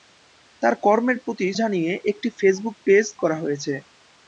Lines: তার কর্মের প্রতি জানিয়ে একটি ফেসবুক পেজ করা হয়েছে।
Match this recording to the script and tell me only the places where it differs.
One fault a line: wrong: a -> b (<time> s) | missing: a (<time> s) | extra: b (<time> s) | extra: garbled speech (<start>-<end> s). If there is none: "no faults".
no faults